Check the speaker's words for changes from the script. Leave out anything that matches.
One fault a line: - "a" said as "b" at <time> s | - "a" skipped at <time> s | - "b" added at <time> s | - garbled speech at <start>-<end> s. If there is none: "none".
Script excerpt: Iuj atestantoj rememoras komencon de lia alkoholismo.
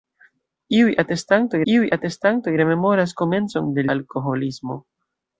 - "iuj atestantoj" added at 1.7 s
- "lia" skipped at 3.9 s